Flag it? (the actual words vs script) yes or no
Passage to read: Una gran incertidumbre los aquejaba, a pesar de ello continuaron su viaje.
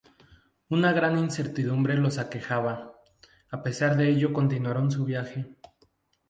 no